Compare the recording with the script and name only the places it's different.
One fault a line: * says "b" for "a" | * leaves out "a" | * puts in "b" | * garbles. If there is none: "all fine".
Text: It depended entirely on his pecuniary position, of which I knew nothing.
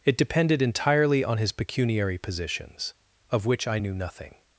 * says "positions" for "position"